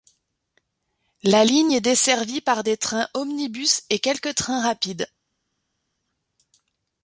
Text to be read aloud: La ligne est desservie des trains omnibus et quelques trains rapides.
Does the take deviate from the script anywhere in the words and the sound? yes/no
yes